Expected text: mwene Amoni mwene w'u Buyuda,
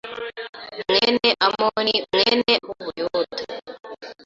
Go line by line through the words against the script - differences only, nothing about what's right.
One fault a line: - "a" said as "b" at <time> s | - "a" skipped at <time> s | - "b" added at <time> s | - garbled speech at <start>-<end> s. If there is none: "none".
none